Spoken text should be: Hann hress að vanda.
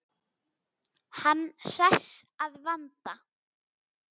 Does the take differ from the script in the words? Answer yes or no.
no